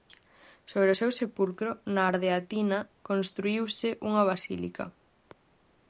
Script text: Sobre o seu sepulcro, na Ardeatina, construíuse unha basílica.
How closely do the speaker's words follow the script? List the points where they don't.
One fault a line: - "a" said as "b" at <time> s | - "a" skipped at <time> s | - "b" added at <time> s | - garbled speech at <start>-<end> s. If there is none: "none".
none